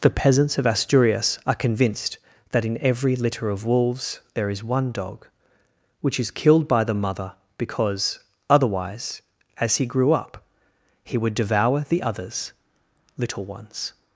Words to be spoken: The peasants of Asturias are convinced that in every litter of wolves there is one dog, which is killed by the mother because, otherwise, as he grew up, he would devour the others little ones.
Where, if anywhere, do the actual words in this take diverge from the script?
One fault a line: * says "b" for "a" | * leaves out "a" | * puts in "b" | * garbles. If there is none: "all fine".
all fine